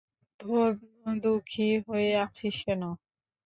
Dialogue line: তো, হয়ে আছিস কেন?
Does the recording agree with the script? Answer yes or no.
no